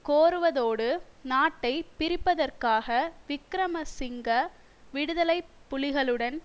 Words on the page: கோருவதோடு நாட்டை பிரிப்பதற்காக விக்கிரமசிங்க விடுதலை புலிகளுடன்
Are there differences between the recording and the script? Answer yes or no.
no